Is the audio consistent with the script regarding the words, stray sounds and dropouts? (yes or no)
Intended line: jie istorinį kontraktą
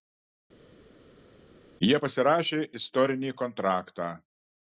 no